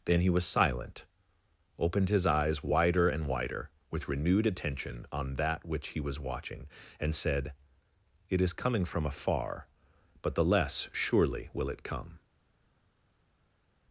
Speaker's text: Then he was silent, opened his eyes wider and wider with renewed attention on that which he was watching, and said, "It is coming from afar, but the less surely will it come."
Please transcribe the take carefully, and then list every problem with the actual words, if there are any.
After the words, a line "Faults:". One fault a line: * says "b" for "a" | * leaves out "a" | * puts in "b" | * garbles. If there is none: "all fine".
Then he was silent, opened his eyes wider and wider with renewed attention on that which he was watching, and said, "It is coming from afar, but the less surely will it come."
Faults:
all fine